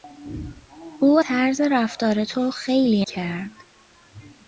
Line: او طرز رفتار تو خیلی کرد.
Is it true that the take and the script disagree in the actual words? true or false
false